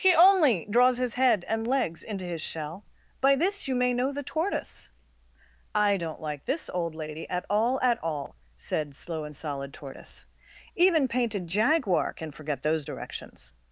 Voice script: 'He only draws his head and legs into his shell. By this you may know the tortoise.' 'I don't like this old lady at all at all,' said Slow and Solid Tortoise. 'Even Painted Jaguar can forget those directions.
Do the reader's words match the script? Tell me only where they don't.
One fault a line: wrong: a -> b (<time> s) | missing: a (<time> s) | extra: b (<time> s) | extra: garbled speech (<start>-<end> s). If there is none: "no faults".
no faults